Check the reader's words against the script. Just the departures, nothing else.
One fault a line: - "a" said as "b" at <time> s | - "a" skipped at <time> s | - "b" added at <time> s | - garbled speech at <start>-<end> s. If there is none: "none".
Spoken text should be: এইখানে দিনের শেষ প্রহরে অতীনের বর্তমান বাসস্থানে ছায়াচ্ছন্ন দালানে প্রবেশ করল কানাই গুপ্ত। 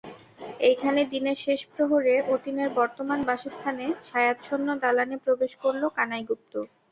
none